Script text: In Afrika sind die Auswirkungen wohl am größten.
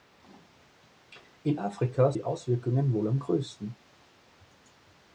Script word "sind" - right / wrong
wrong